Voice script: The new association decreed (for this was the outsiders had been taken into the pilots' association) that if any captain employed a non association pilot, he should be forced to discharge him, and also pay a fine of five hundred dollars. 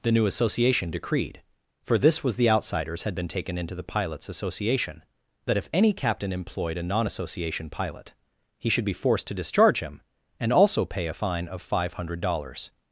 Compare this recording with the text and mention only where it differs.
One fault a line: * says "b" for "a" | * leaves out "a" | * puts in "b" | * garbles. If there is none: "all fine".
all fine